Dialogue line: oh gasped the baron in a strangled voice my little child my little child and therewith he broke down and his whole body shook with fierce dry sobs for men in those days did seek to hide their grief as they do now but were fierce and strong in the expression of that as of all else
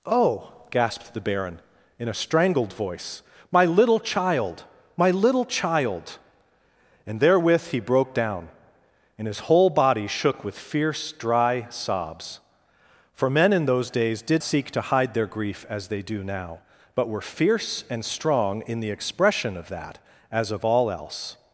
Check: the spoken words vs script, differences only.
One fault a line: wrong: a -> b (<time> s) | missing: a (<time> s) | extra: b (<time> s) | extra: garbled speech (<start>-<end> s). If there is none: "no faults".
no faults